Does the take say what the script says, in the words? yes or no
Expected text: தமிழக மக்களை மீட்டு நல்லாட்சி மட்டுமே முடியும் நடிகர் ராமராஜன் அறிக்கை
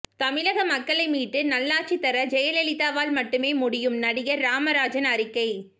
no